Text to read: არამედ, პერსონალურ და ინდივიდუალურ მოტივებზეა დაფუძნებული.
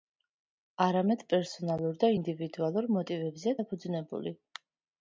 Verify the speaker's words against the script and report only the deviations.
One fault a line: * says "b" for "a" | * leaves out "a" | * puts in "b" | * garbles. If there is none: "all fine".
all fine